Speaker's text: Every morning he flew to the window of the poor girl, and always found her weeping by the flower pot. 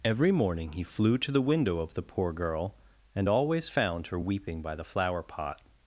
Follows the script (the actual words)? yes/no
yes